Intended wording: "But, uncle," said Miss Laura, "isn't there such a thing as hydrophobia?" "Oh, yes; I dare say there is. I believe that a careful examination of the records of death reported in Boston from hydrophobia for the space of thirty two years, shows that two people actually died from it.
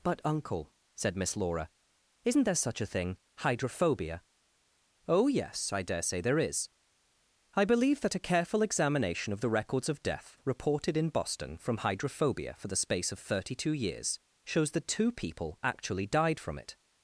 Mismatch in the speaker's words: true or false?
true